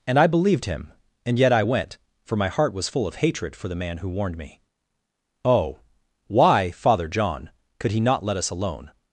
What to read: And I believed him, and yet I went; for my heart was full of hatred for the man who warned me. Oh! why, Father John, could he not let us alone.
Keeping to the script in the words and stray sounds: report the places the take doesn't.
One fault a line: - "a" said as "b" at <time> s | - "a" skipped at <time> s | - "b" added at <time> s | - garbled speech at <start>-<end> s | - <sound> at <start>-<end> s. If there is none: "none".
none